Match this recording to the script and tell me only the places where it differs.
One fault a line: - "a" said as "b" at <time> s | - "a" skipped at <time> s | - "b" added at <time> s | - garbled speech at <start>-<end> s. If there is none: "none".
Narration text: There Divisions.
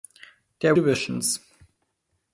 none